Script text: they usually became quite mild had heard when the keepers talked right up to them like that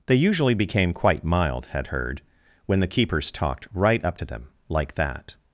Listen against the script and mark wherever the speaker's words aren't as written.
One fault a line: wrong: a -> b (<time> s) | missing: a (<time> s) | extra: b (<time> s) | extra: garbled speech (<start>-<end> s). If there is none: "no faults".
no faults